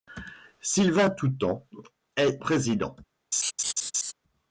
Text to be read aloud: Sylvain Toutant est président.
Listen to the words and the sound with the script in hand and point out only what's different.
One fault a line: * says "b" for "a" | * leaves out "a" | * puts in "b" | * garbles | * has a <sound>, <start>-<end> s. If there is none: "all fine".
* has a laugh, 3.3-4.1 s